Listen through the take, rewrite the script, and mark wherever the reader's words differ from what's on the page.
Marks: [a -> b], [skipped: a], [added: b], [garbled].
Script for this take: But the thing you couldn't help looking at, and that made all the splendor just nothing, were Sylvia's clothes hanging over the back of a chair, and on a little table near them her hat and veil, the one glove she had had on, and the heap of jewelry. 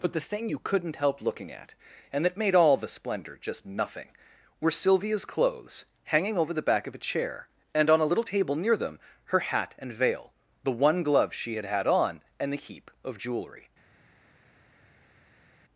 But the thing you couldn't help looking at, and that made all the splendor just nothing, were Sylvia's clothes hanging over the back of a chair, and on a little table near them her hat and veil, the one glove she had had on, and the heap of jewelry.